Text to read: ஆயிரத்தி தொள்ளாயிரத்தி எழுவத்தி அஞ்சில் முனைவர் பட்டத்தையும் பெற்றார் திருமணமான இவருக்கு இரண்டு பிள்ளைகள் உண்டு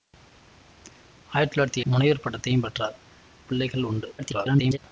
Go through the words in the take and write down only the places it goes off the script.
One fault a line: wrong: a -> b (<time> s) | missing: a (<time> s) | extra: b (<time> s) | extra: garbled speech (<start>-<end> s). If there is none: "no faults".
missing: எழுவத்தி அஞ்சில் (1.8 s)
missing: திருமணமான இவருக்கு இரண்டு (3.0 s)
extra: garbled speech (4.2-4.8 s)